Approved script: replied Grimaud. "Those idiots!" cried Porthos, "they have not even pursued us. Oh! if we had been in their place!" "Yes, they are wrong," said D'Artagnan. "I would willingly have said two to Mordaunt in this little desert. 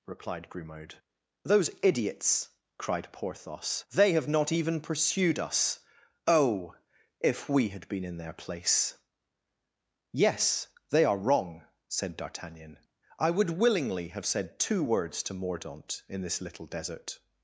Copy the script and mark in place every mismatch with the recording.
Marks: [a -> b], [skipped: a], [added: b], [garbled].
replied Grimaud. "Those idiots!" cried Porthos, "they have not even pursued us. Oh! if we had been in their place!" "Yes, they are wrong," said D'Artagnan. "I would willingly have said two [added: words] to Mordaunt in this little desert.